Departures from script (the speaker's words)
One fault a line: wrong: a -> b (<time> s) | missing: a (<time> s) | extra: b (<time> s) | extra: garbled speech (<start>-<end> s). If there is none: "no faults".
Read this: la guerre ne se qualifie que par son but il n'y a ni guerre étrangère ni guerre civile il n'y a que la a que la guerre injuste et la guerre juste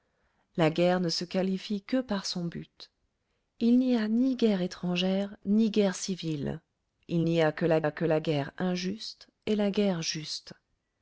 no faults